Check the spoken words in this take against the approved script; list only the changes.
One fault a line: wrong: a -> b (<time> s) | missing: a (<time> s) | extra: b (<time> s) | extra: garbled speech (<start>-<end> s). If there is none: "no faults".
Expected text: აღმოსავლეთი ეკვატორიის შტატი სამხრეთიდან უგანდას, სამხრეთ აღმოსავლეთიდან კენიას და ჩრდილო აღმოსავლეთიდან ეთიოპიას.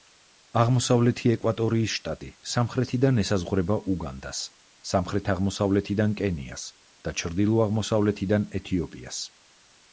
extra: ესაზღვრება (3.2 s)